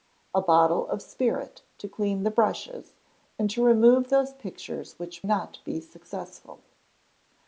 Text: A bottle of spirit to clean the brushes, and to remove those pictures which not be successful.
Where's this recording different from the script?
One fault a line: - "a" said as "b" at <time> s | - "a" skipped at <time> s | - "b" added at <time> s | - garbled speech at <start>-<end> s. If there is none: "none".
none